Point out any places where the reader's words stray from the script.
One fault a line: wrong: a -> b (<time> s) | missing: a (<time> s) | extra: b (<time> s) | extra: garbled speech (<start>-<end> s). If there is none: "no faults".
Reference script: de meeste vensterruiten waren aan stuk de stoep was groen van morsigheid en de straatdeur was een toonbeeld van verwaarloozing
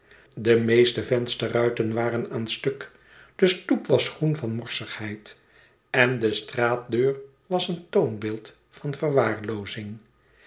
no faults